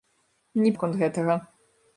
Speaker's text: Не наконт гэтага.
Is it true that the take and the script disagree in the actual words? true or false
false